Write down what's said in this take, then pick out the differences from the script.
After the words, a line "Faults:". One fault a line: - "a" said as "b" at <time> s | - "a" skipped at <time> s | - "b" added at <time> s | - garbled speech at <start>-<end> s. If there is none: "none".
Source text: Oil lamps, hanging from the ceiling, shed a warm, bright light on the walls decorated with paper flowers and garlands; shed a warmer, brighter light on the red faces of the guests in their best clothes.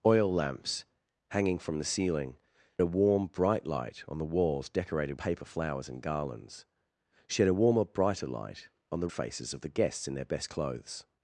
Oil lamps, hanging from the ceiling, a warm, bright light on the walls decorated paper flowers and garlands; shed a warmer, brighter light on the faces of the guests in their best clothes.
Faults:
- "shed" skipped at 2.4 s
- "with" skipped at 5.2 s
- "red" skipped at 9.1 s